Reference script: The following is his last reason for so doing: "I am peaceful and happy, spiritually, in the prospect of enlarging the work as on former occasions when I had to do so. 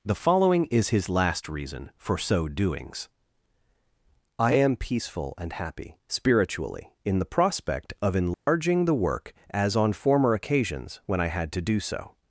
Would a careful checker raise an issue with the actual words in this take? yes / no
yes